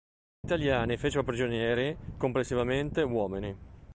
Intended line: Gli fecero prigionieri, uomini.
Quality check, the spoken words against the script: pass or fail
fail